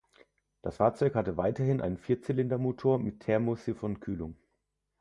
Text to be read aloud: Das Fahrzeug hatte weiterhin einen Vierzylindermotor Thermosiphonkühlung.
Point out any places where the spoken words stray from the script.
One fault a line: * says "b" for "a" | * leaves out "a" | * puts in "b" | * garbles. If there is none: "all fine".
* puts in "mit"